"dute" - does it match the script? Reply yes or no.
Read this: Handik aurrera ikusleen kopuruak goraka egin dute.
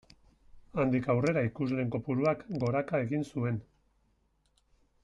no